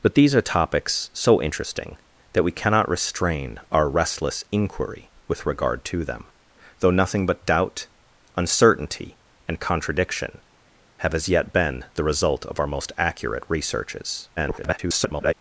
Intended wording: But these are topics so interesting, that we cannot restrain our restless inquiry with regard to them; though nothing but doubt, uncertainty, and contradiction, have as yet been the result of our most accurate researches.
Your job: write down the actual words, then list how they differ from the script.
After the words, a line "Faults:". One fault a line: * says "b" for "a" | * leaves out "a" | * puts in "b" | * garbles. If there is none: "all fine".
But these are topics so interesting, that we cannot restrain our restless inquiry with regard to them; though nothing but doubt, uncertainty, and contradiction, have as yet been the result of our most accurate researches. [garbled]
Faults:
* garbles